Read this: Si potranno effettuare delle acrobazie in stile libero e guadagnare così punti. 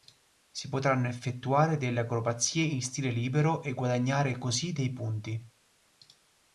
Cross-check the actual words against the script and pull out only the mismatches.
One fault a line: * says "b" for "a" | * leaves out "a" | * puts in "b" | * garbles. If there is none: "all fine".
* puts in "dei"